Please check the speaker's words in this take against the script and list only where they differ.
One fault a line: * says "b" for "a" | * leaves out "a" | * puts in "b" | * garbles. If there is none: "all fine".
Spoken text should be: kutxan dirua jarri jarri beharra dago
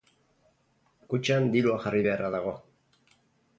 * leaves out "jarri"